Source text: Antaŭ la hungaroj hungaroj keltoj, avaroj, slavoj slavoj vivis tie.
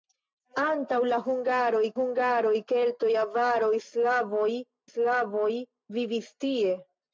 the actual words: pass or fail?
pass